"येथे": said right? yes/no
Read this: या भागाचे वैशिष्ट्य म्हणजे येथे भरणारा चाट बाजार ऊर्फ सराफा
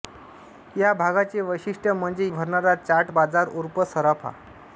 no